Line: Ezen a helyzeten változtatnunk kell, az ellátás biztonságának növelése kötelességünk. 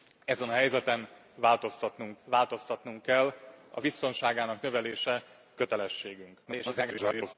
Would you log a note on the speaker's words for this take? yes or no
yes